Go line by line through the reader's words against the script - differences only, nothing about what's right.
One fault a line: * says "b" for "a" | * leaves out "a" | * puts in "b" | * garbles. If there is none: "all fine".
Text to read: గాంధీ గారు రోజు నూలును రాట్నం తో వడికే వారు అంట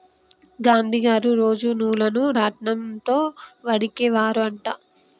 all fine